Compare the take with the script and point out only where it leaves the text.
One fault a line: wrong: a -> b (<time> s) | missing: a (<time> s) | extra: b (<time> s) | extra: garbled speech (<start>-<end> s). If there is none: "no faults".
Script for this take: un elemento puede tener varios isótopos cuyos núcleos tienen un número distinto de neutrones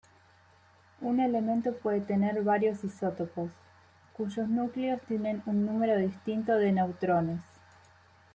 no faults